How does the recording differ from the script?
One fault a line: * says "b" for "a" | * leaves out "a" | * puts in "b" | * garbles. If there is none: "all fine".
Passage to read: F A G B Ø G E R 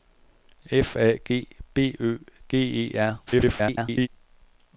* garbles